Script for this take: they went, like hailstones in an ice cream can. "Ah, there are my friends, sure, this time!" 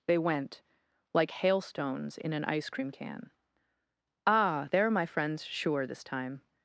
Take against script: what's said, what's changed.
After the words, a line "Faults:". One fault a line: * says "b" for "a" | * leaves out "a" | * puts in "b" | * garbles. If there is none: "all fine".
they went, like hailstones in an ice cream can. "Ah, there are my friends, sure, this time!"
Faults:
all fine